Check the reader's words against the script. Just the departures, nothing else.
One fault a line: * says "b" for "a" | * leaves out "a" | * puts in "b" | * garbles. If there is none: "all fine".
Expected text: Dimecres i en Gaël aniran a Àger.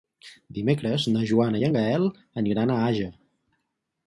* puts in "na Joana"